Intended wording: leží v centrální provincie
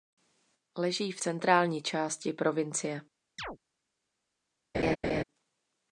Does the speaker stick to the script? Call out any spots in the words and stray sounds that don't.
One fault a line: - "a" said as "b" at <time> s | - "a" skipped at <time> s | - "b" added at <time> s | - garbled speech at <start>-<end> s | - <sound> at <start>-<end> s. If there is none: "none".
- "části" added at 1.8 s
- chirp at 3.4-3.6 s
- laugh at 4.7-5.2 s